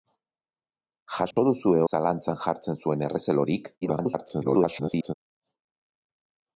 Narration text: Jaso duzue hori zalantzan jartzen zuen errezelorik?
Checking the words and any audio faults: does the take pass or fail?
fail